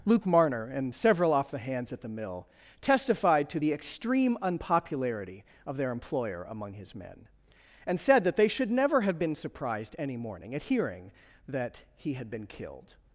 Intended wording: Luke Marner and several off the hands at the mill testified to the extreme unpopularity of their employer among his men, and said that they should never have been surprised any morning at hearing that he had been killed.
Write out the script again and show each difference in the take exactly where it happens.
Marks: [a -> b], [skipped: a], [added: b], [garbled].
Luke Marner and several off the hands at the mill testified to the extreme unpopularity of their employer among his men, and said that they should never have been surprised any morning at hearing that he had been killed.